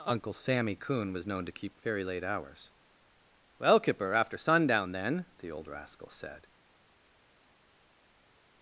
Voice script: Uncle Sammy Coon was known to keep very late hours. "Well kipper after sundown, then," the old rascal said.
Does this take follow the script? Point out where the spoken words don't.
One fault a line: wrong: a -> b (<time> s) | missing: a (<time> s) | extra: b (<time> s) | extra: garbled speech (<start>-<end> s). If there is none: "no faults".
no faults